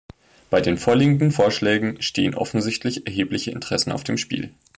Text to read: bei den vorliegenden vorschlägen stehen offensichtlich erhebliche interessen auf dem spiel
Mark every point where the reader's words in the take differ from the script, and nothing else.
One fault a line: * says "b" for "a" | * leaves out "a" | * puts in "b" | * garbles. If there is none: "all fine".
all fine